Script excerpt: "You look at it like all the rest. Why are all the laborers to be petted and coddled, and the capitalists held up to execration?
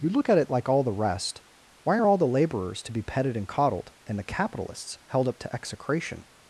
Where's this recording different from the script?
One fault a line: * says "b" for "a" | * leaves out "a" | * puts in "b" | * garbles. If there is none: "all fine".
all fine